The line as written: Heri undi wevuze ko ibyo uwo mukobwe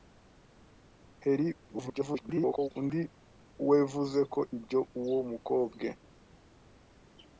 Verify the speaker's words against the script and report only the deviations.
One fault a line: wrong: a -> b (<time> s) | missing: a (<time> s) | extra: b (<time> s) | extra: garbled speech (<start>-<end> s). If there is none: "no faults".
extra: garbled speech (1.7-2.7 s)